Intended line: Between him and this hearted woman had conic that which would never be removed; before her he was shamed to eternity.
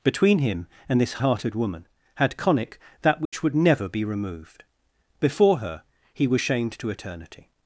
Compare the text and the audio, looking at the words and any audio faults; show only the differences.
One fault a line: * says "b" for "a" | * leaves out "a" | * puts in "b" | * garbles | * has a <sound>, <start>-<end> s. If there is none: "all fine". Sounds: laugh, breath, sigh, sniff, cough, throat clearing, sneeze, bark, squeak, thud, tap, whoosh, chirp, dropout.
* has a dropout, 3.3-3.3 s